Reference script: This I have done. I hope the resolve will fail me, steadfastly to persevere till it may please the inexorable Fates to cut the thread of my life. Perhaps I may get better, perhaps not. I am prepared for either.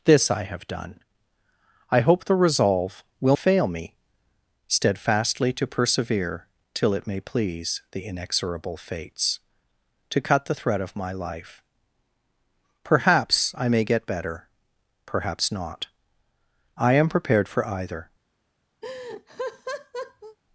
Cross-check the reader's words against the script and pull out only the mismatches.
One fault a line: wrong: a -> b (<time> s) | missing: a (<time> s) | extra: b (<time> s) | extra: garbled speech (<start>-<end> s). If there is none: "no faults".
no faults